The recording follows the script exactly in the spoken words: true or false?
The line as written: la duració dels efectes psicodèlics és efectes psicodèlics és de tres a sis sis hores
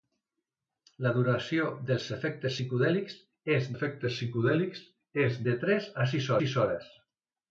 true